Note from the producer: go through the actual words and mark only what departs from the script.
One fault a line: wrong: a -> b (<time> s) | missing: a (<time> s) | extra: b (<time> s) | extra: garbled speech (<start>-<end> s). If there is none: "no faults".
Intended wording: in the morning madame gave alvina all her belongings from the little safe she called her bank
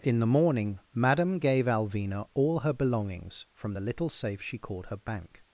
no faults